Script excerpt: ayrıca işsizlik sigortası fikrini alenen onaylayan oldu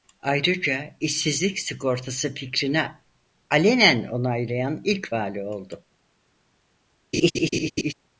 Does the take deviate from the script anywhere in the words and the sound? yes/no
yes